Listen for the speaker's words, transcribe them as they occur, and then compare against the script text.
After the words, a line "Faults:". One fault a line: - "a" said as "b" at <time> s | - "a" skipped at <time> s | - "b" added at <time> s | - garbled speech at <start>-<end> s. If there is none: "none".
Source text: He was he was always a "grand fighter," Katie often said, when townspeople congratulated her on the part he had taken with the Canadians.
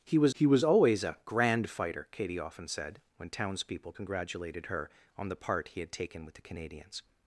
He was he was always a "grand fighter," Katie often said, when townspeople congratulated her on the part he had taken with the Canadians.
Faults:
none